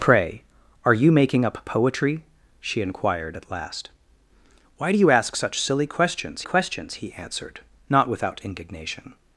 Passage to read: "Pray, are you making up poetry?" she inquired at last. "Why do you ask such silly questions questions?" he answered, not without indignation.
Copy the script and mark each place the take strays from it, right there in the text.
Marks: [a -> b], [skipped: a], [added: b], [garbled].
"Pray, are you making up poetry?" she inquired at last. "Why do you ask such silly questions questions?" he answered, not without indignation.